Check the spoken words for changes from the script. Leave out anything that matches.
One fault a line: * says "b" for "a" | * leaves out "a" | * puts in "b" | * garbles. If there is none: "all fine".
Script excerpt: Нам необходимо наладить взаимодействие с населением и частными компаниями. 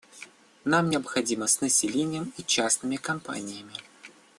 * leaves out "наладить взаимодействие"